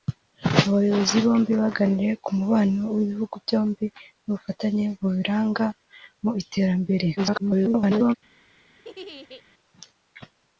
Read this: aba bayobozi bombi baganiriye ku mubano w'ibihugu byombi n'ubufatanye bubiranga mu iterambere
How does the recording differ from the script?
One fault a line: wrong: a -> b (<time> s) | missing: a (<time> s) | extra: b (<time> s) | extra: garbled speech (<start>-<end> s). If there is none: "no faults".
extra: garbled speech (7.2-8.1 s)